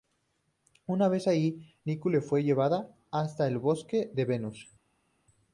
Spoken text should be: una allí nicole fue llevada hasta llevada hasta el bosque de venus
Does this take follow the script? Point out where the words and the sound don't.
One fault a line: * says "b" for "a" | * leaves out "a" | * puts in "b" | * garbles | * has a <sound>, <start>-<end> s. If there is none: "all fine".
* puts in "vez"
* leaves out "llevada hasta"